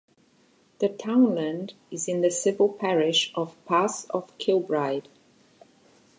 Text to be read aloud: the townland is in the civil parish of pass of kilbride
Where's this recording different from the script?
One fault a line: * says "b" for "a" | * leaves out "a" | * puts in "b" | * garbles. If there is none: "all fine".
all fine